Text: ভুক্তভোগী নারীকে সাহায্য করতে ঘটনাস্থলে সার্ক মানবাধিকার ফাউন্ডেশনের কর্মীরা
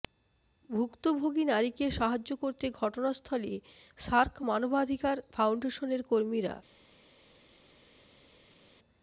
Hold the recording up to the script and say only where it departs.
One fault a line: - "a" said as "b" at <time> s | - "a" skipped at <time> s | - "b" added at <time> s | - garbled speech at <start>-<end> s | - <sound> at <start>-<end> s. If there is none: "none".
none